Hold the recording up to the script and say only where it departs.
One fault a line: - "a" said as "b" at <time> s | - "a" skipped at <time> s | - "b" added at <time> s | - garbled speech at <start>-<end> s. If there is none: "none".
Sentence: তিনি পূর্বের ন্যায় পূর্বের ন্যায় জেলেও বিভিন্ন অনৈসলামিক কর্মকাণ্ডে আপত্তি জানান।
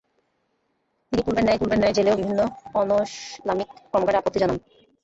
none